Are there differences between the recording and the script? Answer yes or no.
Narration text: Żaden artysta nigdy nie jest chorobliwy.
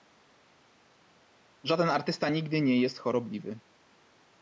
no